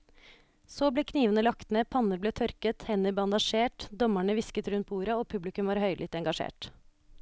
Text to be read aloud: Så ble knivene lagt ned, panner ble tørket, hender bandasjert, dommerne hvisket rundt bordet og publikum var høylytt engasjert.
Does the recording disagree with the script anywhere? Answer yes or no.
no